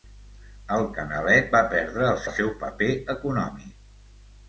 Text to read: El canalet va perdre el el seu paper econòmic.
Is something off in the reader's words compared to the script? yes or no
no